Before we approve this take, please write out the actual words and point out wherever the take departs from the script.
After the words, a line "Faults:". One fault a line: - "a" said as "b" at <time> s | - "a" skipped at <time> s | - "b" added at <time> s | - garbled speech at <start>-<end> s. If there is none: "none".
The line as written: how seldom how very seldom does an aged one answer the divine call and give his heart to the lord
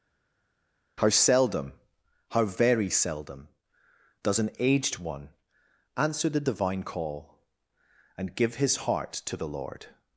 how seldom how very seldom does an aged one answer the divine call and give his heart to the lord
Faults:
none